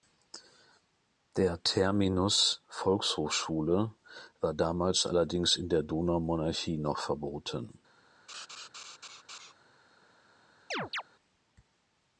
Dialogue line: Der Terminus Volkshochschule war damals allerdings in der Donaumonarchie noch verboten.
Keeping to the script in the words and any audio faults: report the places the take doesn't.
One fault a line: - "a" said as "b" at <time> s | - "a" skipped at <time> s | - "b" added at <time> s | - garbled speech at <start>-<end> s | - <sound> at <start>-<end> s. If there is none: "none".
- laugh at 8.3-9.5 s
- chirp at 10.7-11.0 s